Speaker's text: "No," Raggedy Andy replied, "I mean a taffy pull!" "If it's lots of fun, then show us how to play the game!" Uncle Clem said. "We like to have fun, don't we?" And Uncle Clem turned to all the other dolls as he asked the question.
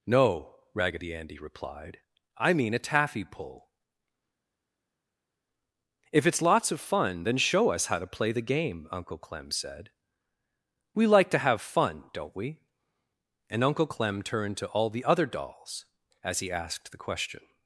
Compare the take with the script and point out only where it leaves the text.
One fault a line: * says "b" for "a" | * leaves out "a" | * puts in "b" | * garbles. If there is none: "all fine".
all fine